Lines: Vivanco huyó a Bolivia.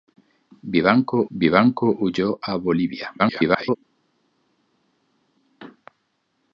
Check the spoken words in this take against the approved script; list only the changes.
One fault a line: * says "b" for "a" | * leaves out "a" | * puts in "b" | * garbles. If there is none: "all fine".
* puts in "vivanco"
* garbles